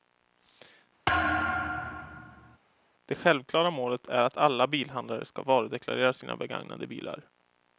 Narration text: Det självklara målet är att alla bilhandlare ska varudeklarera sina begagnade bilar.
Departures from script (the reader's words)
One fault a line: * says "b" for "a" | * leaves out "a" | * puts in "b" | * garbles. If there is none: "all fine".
all fine